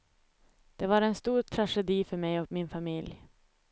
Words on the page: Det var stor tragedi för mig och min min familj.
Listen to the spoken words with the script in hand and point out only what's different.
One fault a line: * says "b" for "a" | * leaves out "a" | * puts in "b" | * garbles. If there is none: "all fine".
* puts in "en"
* leaves out "min"